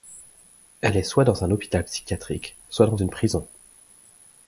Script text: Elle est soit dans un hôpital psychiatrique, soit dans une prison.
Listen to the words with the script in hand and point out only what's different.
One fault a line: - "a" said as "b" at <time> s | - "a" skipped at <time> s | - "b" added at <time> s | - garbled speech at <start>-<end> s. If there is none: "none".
none